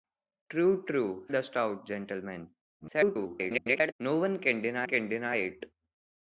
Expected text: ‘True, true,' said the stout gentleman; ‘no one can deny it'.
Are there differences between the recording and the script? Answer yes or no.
yes